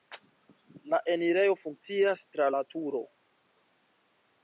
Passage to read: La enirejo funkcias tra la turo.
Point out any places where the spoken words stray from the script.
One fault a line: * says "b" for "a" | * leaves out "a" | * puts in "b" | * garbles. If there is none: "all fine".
all fine